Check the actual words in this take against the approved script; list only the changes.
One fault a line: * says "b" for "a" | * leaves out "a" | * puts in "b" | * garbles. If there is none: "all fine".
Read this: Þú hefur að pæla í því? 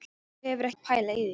all fine